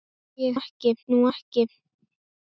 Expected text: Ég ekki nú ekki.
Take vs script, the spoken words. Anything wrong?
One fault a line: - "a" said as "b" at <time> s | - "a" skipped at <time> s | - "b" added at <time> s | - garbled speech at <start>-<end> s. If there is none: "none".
none